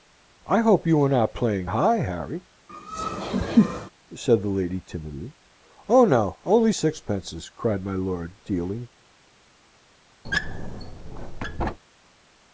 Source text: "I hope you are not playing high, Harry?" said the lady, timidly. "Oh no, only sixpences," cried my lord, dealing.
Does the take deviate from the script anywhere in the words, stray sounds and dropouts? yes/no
yes